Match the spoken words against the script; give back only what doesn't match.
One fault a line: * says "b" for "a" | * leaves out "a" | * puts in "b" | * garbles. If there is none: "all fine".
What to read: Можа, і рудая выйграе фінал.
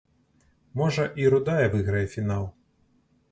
all fine